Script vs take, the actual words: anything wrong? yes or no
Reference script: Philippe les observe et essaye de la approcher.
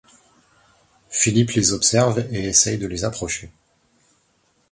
yes